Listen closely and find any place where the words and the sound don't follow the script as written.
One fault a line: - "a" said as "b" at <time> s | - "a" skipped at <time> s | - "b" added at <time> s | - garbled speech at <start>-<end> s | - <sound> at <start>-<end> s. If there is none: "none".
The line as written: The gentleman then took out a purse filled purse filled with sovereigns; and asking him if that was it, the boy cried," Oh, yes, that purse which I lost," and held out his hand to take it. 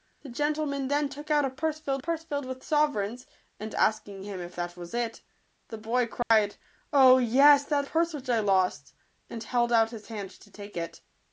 - dropout at 6.2-6.3 s